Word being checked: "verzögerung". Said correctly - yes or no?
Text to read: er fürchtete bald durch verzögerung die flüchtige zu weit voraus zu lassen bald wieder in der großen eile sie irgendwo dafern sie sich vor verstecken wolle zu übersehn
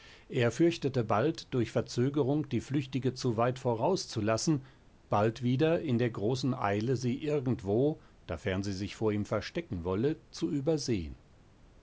yes